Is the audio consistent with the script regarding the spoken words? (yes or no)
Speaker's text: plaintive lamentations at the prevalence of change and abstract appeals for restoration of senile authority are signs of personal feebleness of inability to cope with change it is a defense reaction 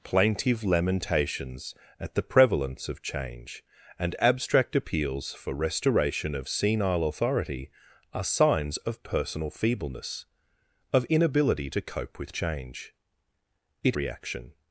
no